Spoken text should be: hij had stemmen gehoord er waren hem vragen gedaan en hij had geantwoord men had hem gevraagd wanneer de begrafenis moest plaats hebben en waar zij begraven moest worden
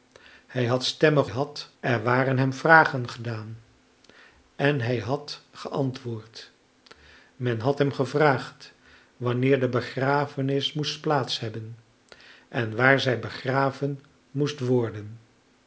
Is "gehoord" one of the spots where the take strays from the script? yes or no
yes